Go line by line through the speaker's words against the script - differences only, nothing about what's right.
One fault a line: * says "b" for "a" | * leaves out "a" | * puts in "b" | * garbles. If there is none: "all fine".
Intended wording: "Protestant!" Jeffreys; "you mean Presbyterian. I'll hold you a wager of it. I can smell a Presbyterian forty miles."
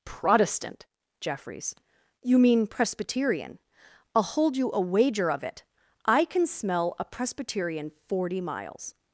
all fine